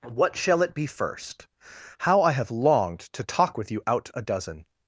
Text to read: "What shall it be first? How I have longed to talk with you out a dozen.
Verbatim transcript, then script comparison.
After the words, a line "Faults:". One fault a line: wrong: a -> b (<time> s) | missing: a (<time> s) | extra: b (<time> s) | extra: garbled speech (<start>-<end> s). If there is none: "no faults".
"What shall it be first? How I have longed to talk with you out a dozen.
Faults:
no faults